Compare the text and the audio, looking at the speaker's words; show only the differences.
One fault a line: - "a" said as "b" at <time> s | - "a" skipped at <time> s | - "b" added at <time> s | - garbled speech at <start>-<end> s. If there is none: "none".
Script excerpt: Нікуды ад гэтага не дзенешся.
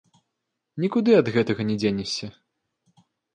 none